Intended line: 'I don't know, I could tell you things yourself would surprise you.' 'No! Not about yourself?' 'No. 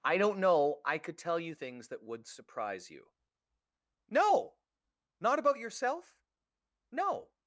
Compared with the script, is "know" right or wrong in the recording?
right